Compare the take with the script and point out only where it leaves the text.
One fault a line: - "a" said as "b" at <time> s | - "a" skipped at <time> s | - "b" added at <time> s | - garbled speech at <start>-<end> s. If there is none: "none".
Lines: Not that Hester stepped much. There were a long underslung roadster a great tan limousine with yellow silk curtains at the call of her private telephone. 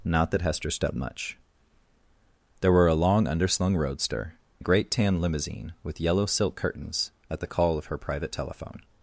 none